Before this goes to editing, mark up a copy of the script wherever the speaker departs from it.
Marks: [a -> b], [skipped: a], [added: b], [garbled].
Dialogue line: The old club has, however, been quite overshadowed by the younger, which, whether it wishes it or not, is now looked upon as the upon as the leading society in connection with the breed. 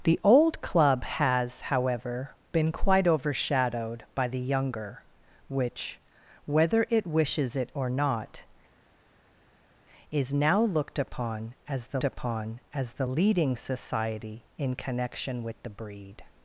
The old club has, however, been quite overshadowed by the younger, which, whether it wishes it or not, is now looked upon as the upon as the leading society in connection with the breed.